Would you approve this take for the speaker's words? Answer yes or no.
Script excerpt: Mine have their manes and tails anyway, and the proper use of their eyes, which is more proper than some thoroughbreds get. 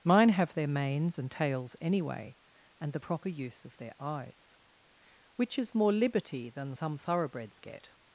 no